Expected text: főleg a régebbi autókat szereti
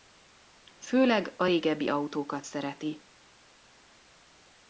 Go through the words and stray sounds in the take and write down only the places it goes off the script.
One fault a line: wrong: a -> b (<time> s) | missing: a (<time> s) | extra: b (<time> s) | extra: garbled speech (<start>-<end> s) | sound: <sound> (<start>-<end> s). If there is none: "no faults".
no faults